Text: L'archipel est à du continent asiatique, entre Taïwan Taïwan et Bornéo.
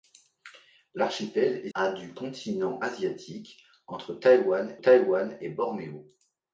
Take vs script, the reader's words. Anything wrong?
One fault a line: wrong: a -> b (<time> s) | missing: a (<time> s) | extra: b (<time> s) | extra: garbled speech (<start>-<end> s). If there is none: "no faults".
no faults